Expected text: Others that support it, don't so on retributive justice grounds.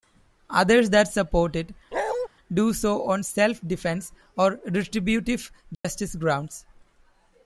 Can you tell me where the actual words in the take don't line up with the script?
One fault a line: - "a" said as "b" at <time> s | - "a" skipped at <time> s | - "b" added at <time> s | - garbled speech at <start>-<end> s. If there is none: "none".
- "don't" said as "do" at 2.5 s
- "self defense or" added at 3.2 s